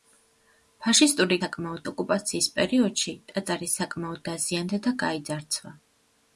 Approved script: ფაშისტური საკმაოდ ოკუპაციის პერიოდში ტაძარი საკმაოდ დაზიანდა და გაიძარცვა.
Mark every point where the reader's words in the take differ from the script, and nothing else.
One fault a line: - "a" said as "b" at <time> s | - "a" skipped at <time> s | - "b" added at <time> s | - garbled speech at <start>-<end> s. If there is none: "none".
none